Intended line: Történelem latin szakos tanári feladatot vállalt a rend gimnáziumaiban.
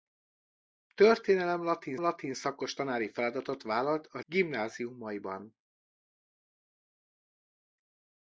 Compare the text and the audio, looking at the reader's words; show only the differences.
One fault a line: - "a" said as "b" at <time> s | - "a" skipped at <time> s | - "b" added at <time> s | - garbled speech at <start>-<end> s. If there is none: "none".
- "latin" added at 2.0 s
- "rend" skipped at 4.2 s